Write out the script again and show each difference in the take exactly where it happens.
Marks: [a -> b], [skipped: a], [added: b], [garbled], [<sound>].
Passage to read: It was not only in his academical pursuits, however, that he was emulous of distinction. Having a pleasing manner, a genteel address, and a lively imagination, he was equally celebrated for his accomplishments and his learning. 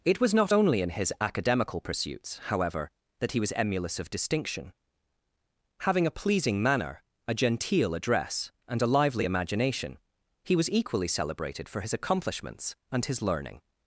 It was not only in his academical pursuits, however, that he was emulous of distinction. Having a pleasing manner, a genteel address, and a lively imagination, he was equally celebrated for his accomplishments and his learning.